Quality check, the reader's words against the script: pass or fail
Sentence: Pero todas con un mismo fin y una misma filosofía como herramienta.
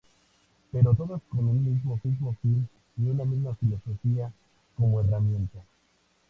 fail